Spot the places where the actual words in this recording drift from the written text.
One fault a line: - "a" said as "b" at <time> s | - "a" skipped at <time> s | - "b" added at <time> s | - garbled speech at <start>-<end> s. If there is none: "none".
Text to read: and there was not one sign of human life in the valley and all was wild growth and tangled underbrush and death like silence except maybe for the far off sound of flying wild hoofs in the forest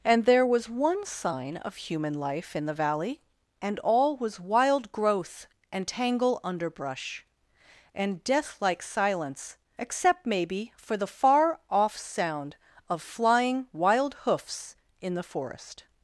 - "not" skipped at 0.7 s
- "tangled" said as "tangle" at 5.9 s